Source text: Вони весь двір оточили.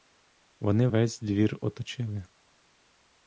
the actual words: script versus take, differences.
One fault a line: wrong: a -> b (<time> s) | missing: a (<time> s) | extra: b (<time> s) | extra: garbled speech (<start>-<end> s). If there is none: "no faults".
no faults